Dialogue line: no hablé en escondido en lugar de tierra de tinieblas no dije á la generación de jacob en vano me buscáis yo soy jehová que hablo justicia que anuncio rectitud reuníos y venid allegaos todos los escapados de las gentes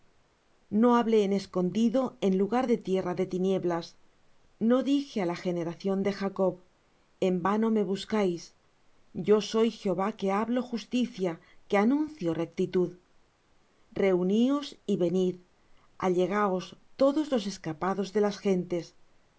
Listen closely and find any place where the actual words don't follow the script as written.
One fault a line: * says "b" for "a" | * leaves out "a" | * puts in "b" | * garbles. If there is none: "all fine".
all fine